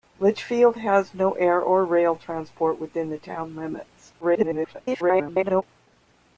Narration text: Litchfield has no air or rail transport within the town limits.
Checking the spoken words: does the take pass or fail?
fail